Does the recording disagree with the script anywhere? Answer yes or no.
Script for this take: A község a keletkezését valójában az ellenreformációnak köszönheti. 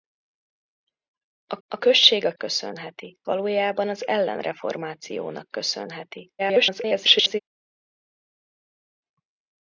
yes